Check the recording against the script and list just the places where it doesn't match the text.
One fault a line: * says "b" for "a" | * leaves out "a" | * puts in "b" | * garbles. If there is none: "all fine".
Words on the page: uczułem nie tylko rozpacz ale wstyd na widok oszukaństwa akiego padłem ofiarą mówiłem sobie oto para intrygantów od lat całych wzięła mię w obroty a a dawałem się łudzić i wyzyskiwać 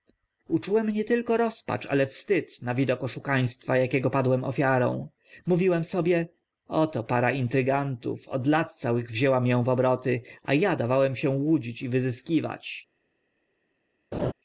all fine